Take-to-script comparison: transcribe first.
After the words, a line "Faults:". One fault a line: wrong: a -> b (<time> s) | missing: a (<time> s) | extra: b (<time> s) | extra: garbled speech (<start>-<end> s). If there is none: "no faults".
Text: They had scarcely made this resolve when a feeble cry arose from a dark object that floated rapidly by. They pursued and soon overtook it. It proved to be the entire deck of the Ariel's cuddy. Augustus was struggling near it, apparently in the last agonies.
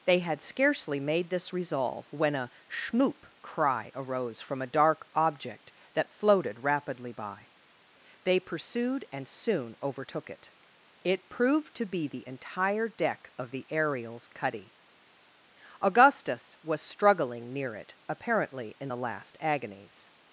They had scarcely made this resolve when a schmoop cry arose from a dark object that floated rapidly by. They pursued and soon overtook it. It proved to be the entire deck of the Ariel's cuddy. Augustus was struggling near it, apparently in the last agonies.
Faults:
wrong: feeble -> schmoop (2.7 s)